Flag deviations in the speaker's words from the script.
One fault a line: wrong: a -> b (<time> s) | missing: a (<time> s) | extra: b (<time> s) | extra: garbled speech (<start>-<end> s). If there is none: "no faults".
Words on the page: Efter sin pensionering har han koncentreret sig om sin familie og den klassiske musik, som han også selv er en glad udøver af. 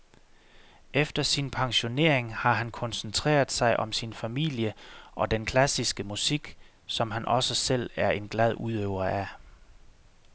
no faults